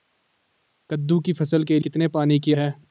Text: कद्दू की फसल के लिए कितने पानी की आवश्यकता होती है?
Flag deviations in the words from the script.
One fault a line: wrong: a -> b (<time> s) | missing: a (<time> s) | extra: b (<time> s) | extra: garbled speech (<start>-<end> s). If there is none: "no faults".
missing: लिए (1.8 s)
missing: आवश्यकता होती (2.5 s)